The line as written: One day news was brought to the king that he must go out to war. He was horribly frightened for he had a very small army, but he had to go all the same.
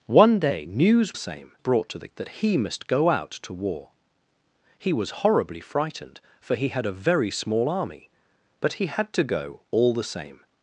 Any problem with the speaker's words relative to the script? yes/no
yes